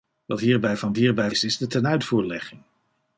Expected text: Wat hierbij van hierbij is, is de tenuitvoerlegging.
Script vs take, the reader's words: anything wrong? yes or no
no